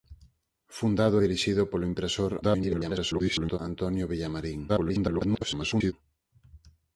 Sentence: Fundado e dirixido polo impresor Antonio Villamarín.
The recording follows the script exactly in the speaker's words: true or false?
false